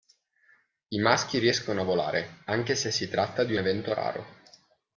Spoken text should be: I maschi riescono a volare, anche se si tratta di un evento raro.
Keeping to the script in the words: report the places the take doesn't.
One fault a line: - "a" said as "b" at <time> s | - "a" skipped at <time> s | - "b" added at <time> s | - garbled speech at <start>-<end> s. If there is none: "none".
none